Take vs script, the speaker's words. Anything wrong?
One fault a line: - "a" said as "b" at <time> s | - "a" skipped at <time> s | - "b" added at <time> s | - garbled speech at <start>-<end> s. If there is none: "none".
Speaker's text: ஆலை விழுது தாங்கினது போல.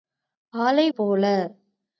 - "விழுது தாங்கினது" skipped at 0.8 s